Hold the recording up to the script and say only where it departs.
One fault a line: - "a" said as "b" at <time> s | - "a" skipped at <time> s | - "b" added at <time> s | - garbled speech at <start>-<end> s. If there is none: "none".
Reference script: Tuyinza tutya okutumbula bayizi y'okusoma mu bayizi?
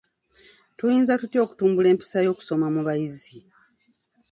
- "bayizi" said as "empisa" at 1.9 s